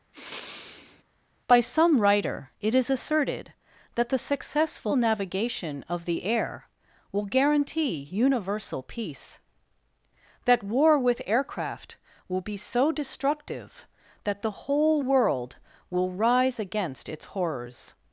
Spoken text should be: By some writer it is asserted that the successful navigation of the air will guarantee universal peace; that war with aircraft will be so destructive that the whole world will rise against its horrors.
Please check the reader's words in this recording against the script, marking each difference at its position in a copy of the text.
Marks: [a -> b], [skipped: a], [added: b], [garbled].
By some writer it is asserted that the successful navigation of the air will guarantee universal peace; that war with aircraft will be so destructive that the whole world will rise against its horrors.